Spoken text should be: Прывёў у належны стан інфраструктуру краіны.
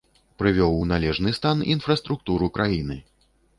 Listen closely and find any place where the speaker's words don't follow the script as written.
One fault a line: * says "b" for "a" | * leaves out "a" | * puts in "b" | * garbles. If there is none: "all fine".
all fine